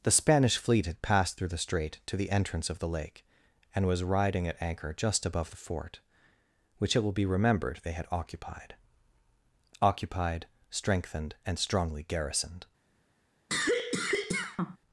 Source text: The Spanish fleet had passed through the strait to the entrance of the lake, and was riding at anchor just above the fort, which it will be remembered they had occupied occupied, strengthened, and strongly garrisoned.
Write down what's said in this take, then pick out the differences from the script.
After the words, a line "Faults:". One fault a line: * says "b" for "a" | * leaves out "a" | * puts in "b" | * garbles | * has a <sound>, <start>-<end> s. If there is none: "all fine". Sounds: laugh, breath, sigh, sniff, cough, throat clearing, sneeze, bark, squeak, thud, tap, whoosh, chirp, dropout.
The Spanish fleet had passed through the strait to the entrance of the lake, and was riding at anchor just above the fort, which it will be remembered they had occupied occupied, strengthened, and strongly garrisoned.
Faults:
* has a cough, 13.5-14.8 s